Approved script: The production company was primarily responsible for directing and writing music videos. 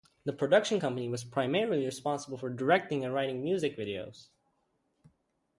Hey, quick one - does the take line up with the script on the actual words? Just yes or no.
yes